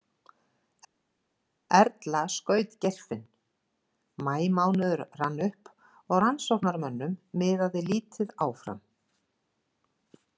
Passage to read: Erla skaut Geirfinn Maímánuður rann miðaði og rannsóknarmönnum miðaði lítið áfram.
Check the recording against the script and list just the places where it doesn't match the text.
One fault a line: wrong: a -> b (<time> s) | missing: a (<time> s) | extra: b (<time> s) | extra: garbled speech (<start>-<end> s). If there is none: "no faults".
wrong: miðaði -> upp (5.5 s)